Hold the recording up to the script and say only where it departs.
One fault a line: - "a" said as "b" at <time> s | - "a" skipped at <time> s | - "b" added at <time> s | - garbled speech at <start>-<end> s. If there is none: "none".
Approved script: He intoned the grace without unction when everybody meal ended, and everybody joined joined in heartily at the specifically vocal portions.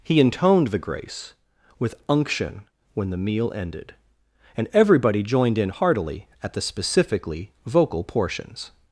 - "without" said as "with" at 1.8 s
- "everybody" said as "the" at 3.1 s
- "joined" skipped at 5.6 s